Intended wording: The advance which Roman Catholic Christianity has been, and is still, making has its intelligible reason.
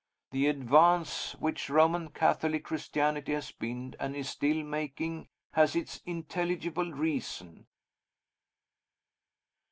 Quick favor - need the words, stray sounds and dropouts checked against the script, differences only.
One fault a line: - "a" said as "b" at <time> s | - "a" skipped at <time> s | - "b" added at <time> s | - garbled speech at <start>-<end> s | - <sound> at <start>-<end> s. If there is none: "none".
none